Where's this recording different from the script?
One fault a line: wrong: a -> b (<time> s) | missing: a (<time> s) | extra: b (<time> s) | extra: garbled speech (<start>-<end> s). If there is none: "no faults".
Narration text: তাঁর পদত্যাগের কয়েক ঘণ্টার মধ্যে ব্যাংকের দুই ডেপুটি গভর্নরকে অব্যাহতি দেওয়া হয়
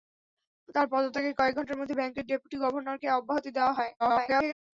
missing: দুই (2.2 s)
extra: garbled speech (4.0-4.5 s)